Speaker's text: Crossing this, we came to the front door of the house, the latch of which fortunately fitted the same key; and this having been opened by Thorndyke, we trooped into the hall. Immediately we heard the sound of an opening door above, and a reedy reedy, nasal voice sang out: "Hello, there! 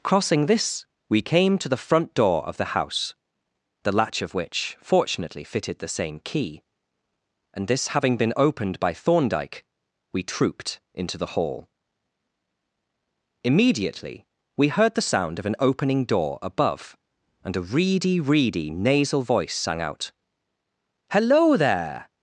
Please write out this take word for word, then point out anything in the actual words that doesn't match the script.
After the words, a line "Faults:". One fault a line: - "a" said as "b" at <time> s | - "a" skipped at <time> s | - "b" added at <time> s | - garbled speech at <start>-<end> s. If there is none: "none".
Crossing this, we came to the front door of the house, the latch of which fortunately fitted the same key; and this having been opened by Thorndyke, we trooped into the hall. Immediately we heard the sound of an opening door above, and a reedy reedy, nasal voice sang out: "Hello, there!
Faults:
none